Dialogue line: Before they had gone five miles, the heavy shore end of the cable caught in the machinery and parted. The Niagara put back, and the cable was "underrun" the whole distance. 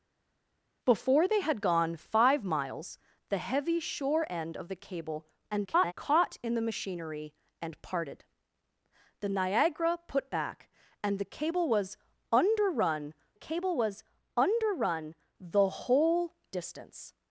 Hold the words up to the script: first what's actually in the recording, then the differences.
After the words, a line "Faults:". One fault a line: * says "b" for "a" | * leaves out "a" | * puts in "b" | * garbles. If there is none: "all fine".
Before they had gone five miles, the heavy shore end of the cable [garbled] caught in the machinery and parted. The Niagara put back, and the cable was "underrun cable was underrun" the whole distance.
Faults:
* garbles
* puts in "cable was underrun"